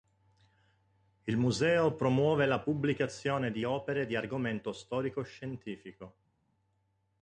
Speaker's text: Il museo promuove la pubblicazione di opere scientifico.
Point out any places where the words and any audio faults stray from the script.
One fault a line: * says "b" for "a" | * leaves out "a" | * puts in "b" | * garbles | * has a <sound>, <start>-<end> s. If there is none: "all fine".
* puts in "di argomento storico"